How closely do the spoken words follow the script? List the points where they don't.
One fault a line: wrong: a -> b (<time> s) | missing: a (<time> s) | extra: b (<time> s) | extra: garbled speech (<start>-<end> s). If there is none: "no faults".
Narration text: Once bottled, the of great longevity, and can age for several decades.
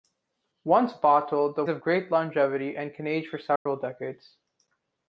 no faults